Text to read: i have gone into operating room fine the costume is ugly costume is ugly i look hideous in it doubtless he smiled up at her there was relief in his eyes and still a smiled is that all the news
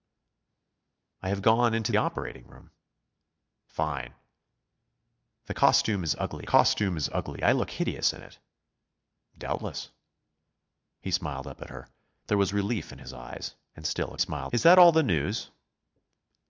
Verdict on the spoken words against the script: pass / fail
pass